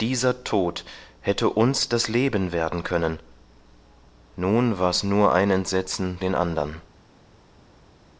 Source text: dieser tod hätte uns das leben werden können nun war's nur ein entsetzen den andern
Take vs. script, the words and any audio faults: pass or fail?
pass